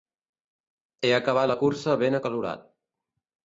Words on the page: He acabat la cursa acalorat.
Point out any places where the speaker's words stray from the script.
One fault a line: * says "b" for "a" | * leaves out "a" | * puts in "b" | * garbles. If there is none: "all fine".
* puts in "ben"